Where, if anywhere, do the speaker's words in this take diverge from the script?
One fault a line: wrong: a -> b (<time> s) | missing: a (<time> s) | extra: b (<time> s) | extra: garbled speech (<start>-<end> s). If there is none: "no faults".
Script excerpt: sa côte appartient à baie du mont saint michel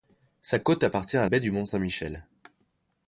no faults